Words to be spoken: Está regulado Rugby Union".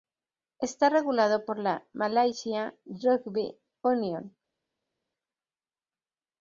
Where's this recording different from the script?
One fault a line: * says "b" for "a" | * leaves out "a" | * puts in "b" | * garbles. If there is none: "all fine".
* puts in "por la Malaysia"